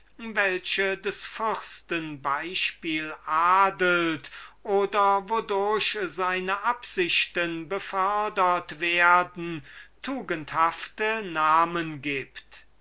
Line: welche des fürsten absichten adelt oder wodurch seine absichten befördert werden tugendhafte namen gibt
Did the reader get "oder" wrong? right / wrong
right